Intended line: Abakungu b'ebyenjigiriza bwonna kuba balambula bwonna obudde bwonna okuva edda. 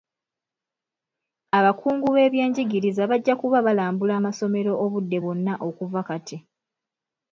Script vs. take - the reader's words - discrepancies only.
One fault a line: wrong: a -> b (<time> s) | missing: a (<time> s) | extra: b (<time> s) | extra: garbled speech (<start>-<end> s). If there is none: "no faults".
wrong: bwonna -> bajja (3.1 s)
wrong: bwonna -> amasomero (4.2 s)
wrong: edda -> kati (6.1 s)